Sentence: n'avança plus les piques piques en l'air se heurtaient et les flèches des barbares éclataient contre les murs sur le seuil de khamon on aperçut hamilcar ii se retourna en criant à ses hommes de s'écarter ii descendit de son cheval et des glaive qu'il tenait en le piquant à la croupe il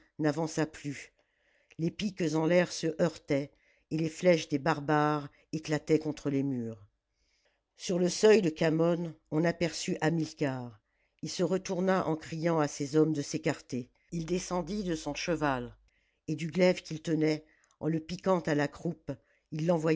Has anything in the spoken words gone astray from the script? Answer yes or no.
yes